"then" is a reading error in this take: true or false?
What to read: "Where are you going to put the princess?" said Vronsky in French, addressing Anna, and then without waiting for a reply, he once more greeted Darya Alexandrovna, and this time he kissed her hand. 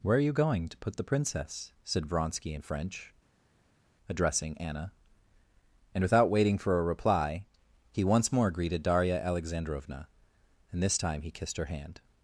true